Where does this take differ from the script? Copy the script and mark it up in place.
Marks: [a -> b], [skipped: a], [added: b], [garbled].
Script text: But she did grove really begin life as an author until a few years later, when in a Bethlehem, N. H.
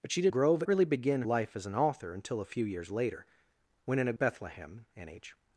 But she did grove really begin life as an author until a few years later, when in a Bethlehem, N. H.